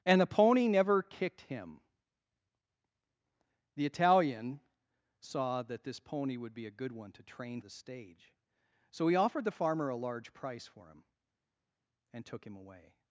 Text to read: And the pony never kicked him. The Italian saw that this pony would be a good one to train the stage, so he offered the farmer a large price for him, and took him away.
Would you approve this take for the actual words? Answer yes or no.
yes